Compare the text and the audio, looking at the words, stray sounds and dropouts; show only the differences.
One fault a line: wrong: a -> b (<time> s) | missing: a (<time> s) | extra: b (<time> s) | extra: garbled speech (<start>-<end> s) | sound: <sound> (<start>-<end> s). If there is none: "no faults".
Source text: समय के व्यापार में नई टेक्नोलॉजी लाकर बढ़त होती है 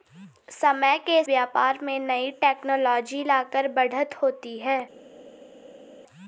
no faults